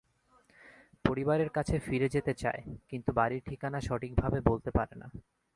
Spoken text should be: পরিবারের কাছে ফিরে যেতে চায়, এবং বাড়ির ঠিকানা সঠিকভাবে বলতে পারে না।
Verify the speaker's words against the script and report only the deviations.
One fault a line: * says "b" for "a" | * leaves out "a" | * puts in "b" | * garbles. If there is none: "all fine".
* says "কিন্তু" for "এবং"